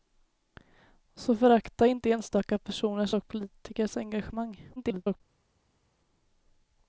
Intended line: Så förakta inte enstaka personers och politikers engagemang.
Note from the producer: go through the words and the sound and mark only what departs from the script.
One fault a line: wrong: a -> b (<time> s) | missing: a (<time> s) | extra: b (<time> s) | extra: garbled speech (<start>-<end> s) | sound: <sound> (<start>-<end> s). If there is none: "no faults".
extra: garbled speech (4.8-5.2 s)